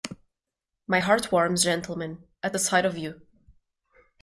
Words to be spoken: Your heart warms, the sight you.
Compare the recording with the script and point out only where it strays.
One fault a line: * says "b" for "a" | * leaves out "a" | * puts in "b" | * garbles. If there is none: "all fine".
* says "My" for "Your"
* puts in "gentlemen at"
* puts in "of"